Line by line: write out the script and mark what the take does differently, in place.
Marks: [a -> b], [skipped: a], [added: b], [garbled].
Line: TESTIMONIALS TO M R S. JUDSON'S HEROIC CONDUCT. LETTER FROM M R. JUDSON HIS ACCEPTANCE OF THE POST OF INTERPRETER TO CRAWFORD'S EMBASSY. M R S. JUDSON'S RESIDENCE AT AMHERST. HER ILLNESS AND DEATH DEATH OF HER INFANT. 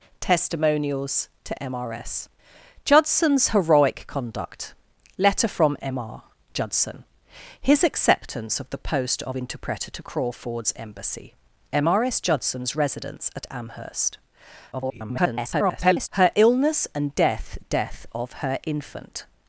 TESTIMONIALS TO M R S. JUDSON'S HEROIC CONDUCT. LETTER FROM M R. JUDSON HIS ACCEPTANCE OF THE POST OF INTERPRETER TO CRAWFORD'S EMBASSY. M R S. JUDSON'S RESIDENCE AT AMHERST. [garbled] HER ILLNESS AND DEATH DEATH OF HER INFANT.